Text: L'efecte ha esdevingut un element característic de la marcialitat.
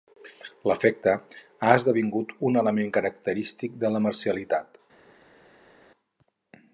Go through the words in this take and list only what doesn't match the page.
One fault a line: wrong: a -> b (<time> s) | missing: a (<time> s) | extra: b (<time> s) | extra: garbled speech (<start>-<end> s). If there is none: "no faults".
no faults